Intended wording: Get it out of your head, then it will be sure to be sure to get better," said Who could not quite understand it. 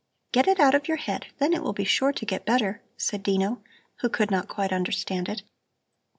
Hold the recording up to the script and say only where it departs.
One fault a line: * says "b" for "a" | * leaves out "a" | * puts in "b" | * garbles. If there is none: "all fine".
* leaves out "be sure to"
* puts in "Dino"